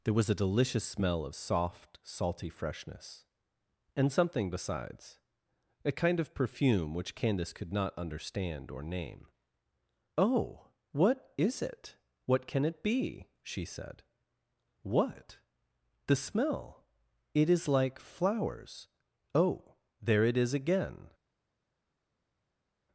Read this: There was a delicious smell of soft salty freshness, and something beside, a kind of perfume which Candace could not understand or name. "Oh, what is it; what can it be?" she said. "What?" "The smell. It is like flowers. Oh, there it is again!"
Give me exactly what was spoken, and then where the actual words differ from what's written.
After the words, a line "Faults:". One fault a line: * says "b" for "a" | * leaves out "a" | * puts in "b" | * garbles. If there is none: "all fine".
There was a delicious smell of soft salty freshness, and something besides, a kind of perfume which Candace could not understand or name. "Oh, what is it; what can it be?" she said. "What?" "The smell. It is like flowers. Oh, there it is again!"
Faults:
* says "besides" for "beside"